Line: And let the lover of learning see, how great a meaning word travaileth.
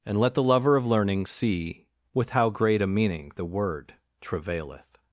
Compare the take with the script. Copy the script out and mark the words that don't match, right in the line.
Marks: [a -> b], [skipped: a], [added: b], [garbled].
And let the lover of learning see, [added: with] how great a meaning [added: the] word travaileth.